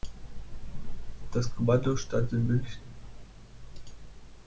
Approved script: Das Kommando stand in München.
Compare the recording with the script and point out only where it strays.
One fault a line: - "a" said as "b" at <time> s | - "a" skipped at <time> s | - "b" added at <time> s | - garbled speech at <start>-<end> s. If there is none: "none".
none